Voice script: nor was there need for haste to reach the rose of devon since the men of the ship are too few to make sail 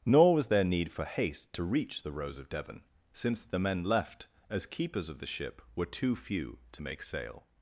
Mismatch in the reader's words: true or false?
true